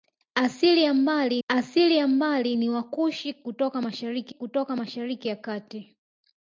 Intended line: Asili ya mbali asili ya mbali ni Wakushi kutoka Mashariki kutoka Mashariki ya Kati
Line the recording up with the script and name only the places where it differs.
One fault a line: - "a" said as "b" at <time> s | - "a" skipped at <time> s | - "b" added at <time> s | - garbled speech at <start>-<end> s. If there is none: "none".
none